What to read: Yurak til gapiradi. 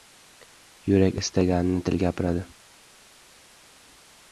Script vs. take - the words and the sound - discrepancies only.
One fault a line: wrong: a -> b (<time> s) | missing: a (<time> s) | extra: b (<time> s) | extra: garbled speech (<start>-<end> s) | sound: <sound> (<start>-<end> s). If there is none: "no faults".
extra: istaganini (1.2 s)